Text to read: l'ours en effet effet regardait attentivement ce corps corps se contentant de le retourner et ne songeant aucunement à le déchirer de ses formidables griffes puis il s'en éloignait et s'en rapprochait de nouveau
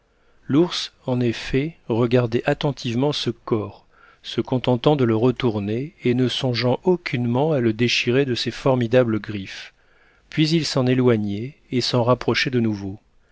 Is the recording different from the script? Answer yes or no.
yes